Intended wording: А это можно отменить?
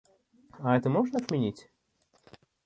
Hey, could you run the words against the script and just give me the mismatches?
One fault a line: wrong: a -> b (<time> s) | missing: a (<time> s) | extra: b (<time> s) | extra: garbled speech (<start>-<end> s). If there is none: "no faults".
no faults